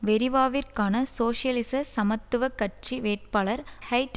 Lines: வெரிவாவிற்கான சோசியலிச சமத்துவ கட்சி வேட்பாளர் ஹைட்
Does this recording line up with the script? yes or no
yes